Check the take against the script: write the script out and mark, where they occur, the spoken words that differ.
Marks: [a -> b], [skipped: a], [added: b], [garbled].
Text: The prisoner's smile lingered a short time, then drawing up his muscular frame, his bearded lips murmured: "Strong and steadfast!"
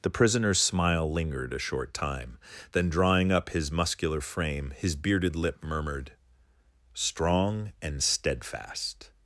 The prisoner's smile lingered a short time, then drawing up his muscular frame, his bearded [lips -> lip] murmured: "Strong and steadfast!"